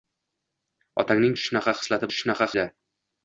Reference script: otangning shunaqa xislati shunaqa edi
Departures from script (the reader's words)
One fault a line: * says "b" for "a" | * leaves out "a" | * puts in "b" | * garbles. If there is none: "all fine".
all fine